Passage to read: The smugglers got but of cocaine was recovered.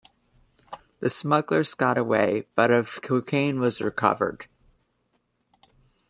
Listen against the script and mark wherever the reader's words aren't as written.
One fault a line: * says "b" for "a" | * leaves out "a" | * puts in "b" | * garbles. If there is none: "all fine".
* puts in "away"